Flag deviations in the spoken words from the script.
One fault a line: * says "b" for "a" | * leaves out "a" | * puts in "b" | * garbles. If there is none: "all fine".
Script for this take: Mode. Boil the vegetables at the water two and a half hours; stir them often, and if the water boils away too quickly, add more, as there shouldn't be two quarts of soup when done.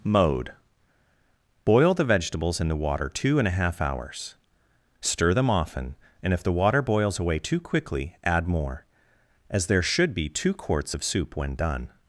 * says "in" for "at"
* says "should" for "shouldn't"